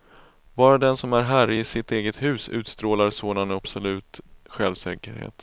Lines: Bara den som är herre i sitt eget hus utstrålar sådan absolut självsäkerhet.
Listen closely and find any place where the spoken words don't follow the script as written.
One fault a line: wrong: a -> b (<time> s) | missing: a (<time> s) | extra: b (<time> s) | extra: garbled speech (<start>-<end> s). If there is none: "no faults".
no faults